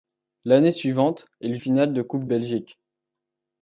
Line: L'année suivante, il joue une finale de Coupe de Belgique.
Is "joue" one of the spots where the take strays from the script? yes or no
yes